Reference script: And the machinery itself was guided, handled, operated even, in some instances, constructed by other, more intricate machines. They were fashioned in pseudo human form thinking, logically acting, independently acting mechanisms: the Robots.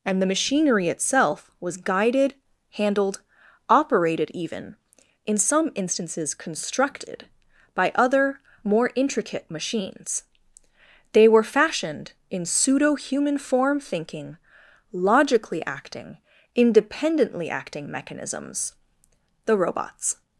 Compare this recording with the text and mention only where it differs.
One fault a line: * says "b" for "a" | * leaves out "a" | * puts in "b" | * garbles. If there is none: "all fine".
all fine